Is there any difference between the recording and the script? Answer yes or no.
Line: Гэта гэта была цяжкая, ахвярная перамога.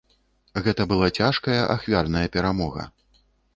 yes